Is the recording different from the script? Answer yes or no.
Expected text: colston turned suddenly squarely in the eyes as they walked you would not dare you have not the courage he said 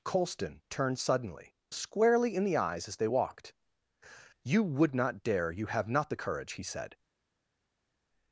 no